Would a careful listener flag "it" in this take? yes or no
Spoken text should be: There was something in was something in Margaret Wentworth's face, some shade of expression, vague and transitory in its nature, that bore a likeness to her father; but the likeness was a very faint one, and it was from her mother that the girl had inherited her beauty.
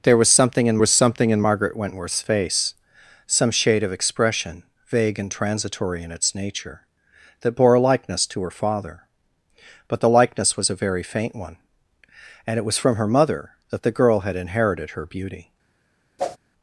no